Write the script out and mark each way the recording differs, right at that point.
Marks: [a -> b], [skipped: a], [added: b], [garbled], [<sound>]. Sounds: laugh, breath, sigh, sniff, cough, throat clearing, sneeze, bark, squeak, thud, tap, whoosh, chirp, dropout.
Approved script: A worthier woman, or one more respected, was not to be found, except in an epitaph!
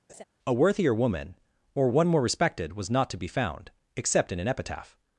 [laugh] A worthier woman, or one more respected, was not to be found, except in an epitaph!